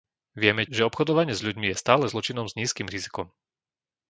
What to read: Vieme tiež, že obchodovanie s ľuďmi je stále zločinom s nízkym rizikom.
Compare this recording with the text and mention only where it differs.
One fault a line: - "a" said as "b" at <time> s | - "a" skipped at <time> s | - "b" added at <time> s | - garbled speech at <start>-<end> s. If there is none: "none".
- "tiež" skipped at 0.7 s